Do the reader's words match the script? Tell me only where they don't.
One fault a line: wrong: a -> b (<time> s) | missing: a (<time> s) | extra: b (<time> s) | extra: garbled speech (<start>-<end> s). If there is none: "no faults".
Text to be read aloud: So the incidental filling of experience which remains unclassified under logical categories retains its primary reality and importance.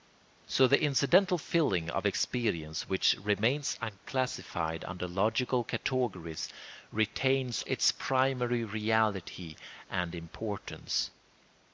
no faults